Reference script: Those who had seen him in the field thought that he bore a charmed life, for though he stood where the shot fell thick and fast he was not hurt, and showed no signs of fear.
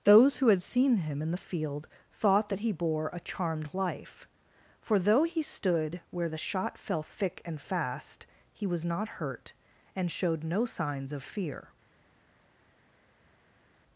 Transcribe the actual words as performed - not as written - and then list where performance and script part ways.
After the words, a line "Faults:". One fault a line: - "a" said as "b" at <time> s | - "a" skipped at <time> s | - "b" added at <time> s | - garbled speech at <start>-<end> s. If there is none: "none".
Those who had seen him in the field thought that he bore a charmed life, for though he stood where the shot fell thick and fast he was not hurt, and showed no signs of fear.
Faults:
none